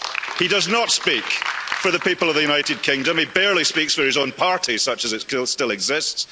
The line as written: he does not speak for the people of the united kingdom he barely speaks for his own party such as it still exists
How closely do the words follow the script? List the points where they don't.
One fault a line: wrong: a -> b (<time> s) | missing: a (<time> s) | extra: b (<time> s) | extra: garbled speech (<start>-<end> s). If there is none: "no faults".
no faults